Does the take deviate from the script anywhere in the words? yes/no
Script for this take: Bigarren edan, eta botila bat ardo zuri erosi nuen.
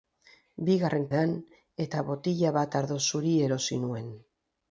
no